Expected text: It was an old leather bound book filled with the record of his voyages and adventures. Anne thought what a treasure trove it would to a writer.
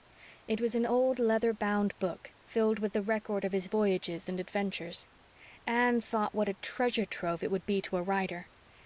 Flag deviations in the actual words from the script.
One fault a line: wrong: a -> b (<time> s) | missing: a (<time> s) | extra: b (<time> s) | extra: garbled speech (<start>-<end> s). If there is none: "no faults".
extra: be (7.7 s)